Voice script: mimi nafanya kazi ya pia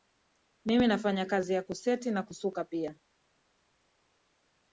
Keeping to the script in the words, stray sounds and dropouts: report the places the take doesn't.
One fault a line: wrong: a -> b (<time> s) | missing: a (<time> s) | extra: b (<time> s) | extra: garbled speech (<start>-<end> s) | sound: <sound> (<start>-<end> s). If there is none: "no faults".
extra: kuseti na kusuka (1.6 s)